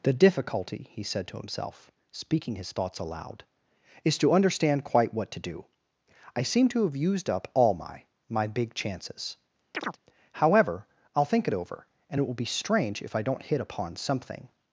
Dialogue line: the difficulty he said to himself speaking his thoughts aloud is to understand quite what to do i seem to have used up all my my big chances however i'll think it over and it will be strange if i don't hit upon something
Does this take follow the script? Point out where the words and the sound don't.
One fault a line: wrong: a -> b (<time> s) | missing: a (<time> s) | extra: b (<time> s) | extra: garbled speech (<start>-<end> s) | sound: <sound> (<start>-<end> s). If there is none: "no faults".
sound: chirp (9.7-10.0 s)